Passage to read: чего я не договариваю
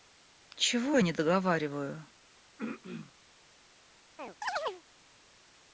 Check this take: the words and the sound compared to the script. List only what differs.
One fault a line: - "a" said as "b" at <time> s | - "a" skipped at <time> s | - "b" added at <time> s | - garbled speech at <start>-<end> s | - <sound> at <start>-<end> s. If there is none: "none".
- throat clearing at 2.6-3.1 s
- chirp at 4.2-4.8 s